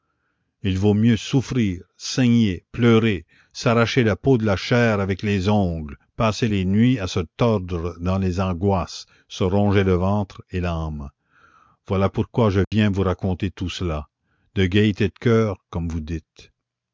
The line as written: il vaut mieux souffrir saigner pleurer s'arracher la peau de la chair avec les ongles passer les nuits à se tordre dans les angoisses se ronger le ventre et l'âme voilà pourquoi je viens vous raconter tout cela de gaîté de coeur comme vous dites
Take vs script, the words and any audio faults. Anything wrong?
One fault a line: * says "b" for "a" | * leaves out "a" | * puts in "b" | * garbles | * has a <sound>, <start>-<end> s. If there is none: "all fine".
* has a dropout, 12.6-12.7 s